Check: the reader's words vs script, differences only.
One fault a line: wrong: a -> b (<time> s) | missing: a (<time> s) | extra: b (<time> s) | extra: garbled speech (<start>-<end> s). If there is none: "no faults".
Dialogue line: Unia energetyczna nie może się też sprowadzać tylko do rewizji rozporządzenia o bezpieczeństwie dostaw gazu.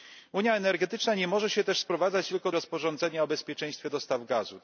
missing: do rewizji (2.5 s)